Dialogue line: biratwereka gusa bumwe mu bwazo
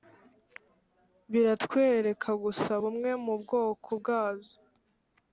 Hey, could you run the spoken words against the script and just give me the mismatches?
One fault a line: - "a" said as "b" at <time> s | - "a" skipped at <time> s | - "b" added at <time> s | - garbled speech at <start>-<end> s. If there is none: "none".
- "bwoko" added at 3.4 s